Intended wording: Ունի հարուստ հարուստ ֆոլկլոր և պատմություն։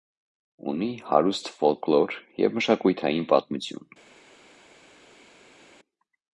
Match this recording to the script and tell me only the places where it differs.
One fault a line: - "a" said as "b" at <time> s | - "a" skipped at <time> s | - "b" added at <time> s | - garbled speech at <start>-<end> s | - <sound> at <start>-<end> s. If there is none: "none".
- "հարուստ" skipped at 1.5 s
- "մշակութային" added at 2.6 s